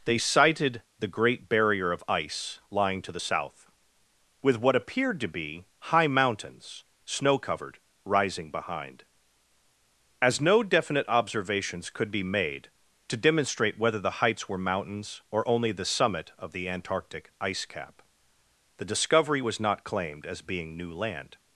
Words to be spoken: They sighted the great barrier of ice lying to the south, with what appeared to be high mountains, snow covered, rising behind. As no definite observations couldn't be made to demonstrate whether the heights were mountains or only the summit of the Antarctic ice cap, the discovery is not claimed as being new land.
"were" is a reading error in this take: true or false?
false